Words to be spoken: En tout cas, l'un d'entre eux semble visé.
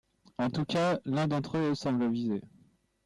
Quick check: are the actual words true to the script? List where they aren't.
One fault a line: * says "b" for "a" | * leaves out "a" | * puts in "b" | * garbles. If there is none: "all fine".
all fine